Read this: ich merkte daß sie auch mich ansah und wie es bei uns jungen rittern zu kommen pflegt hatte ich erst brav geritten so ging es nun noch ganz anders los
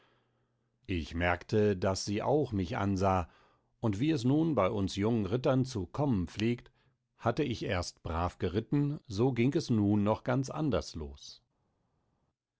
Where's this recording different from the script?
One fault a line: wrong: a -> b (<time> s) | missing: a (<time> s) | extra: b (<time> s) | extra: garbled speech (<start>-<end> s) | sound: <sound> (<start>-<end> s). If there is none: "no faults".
extra: nun (4.2 s)